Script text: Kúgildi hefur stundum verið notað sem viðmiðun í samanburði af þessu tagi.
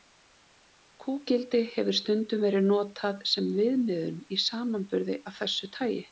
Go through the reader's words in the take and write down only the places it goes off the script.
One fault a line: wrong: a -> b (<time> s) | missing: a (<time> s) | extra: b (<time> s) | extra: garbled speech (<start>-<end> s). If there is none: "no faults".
no faults